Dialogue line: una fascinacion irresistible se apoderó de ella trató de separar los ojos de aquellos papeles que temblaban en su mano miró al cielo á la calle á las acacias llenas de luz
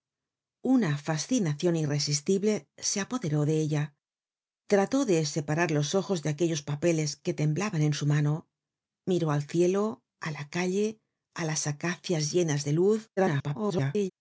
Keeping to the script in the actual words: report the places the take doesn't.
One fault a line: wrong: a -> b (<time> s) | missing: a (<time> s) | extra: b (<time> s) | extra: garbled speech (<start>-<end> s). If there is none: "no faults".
extra: garbled speech (13.2-14.1 s)